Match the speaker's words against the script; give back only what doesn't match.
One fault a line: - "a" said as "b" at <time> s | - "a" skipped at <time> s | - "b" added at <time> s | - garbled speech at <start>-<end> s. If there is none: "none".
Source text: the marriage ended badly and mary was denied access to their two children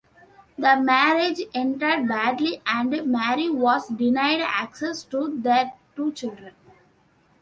none